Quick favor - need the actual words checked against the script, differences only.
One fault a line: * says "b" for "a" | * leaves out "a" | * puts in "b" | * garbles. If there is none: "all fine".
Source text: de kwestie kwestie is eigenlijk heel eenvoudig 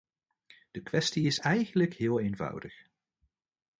* leaves out "kwestie"